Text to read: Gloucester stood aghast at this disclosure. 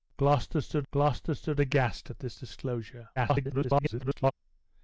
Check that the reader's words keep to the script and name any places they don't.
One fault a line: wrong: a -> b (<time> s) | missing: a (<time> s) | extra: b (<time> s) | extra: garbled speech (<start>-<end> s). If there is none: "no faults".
extra: gloucester stood (0.9 s)
extra: garbled speech (3.2-4.3 s)